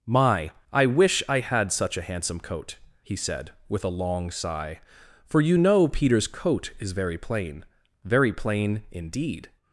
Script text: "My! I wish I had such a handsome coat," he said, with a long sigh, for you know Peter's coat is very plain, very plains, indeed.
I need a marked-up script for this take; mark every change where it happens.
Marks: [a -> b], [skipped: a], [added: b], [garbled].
"My! I wish I had such a handsome coat," he said, with a long sigh, for you know Peter's coat is very plain, very [plains, -> plain] indeed.